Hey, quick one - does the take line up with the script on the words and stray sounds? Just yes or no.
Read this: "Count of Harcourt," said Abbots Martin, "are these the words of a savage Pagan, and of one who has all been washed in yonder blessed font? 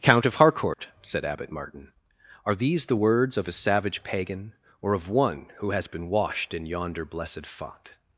no